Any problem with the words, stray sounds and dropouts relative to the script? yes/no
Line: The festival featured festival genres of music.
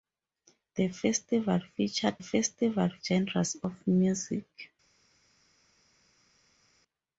no